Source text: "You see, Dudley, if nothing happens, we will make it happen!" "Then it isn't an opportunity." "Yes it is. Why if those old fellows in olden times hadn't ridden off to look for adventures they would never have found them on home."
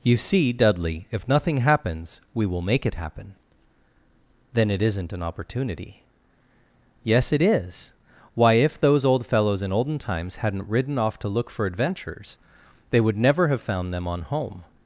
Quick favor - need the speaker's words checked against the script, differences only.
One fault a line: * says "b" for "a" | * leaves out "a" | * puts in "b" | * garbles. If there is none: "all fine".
all fine